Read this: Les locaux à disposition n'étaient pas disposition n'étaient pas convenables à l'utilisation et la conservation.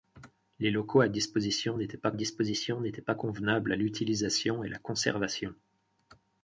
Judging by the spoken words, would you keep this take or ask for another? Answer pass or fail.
pass